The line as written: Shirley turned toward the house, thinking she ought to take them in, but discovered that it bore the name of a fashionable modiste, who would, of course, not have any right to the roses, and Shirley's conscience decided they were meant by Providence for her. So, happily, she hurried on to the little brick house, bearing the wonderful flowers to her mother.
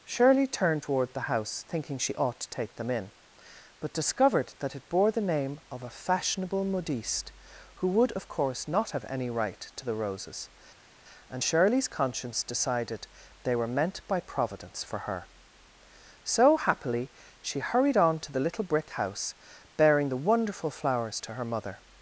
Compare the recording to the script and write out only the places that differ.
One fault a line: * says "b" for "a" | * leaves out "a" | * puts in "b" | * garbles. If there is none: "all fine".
all fine